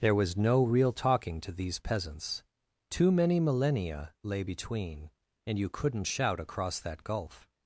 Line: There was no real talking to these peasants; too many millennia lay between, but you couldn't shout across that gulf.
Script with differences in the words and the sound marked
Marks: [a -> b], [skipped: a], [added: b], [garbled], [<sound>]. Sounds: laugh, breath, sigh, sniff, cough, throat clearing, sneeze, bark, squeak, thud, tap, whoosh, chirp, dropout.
There was no real talking to these peasants; too many millennia lay between, [but -> and] you couldn't shout across that gulf.